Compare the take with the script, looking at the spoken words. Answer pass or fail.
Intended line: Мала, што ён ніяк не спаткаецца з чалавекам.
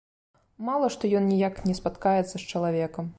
pass